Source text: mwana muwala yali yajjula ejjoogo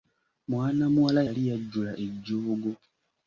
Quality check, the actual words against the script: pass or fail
pass